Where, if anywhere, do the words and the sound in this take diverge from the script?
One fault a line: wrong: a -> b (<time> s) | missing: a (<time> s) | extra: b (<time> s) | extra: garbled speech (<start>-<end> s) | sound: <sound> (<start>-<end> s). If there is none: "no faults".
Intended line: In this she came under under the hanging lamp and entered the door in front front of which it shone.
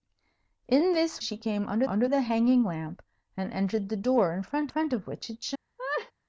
sound: laugh (5.8-6.1 s)